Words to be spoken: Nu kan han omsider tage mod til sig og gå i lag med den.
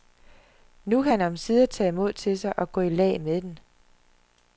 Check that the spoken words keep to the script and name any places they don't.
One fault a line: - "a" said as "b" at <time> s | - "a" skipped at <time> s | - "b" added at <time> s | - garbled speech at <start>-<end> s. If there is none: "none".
none